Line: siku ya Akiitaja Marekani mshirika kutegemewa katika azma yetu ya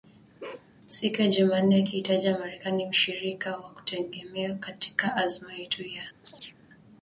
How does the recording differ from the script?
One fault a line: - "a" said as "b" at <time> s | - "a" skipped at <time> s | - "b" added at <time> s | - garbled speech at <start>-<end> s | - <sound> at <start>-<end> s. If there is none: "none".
- bark at 0.4-0.7 s
- "Jumanne" added at 1.3 s
- "wa" added at 3.6 s
- chirp at 6.2-6.6 s